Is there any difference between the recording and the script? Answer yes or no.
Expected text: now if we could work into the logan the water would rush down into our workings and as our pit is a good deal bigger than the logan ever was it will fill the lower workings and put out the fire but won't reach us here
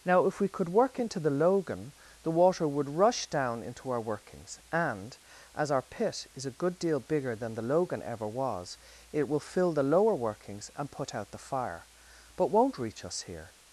no